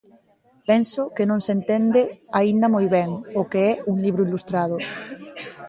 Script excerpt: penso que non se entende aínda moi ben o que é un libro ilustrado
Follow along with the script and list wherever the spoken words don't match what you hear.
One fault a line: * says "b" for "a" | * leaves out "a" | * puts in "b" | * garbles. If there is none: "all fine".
all fine